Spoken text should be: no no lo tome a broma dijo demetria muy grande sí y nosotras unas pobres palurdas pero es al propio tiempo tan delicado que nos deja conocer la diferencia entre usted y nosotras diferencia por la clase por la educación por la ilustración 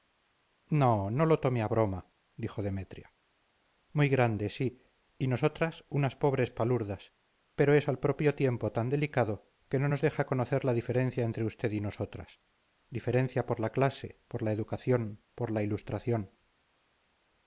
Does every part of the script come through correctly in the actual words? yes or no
no